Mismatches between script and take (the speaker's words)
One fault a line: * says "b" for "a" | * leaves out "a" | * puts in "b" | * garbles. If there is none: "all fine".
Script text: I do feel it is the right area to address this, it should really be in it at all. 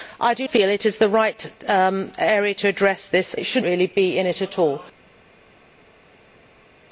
all fine